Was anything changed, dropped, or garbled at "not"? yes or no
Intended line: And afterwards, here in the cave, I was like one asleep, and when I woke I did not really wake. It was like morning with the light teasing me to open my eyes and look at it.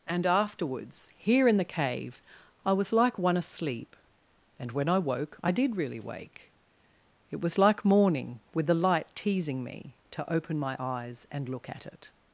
yes